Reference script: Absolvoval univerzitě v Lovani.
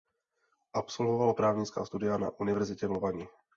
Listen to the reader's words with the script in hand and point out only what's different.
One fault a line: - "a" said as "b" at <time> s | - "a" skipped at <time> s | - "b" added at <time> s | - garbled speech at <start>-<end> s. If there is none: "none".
- "právnická studia na" added at 1.3 s